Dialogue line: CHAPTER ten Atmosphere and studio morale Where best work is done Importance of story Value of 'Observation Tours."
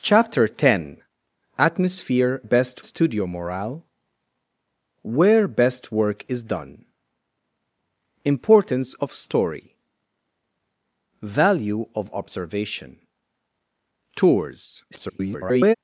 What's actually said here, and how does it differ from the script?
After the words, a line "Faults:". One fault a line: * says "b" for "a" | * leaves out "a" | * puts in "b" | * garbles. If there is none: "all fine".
CHAPTER ten Atmosphere best studio morale Where best work is done Importance of story Value of 'Observation Tours." [garbled]
Faults:
* says "best" for "and"
* garbles